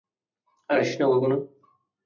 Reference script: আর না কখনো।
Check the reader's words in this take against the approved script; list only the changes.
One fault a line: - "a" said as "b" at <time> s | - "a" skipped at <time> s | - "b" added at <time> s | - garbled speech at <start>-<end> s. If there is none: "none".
- "আসিস" added at 0.8 s